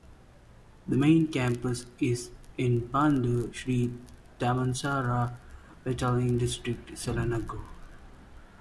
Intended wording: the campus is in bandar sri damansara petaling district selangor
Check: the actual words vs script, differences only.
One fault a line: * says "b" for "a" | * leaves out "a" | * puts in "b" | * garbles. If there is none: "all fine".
* puts in "main"